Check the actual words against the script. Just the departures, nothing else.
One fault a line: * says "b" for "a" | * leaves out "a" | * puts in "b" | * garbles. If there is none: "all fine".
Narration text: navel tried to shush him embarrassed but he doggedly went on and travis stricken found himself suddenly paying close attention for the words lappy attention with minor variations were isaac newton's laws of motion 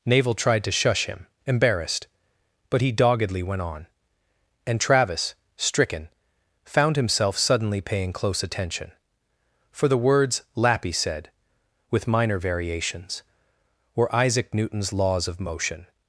* says "said" for "attention"